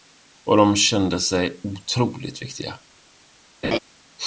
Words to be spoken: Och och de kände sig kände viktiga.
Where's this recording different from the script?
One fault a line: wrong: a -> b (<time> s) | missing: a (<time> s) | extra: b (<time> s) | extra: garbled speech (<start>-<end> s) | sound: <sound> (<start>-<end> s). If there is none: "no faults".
missing: och (0.6 s)
wrong: kände -> otroligt (1.6 s)
sound: laugh (3.6-3.8 s)